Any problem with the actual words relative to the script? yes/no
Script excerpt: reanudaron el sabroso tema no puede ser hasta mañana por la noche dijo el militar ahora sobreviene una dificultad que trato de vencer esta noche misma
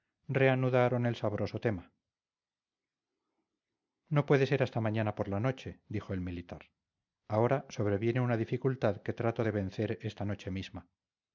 no